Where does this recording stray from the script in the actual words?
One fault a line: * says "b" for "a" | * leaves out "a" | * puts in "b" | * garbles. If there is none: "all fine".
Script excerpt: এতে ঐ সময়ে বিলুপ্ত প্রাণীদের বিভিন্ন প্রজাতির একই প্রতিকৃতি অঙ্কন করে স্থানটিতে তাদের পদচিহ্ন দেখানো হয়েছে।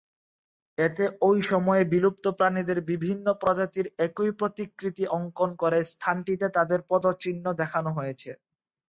all fine